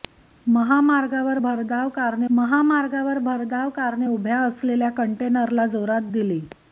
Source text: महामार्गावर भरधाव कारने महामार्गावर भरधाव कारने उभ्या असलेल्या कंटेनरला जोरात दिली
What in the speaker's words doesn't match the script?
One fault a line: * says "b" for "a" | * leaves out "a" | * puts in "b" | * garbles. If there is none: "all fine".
all fine